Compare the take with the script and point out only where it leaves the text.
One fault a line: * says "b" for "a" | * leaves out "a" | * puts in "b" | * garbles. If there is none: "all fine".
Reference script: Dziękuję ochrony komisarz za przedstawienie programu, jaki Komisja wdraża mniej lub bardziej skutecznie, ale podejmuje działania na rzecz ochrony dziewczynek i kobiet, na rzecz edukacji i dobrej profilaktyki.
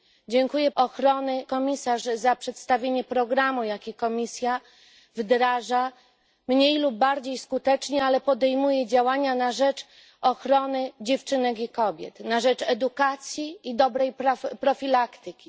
all fine